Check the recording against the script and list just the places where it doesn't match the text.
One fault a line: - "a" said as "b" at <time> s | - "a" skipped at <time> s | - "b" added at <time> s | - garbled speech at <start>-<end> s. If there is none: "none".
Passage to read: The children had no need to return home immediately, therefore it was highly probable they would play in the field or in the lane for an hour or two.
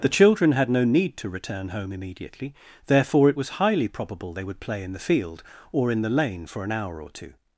none